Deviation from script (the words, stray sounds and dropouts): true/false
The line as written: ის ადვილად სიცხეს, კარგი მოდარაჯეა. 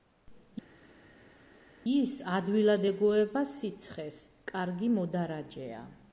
true